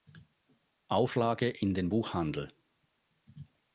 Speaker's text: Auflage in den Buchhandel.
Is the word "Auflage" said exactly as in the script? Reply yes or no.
yes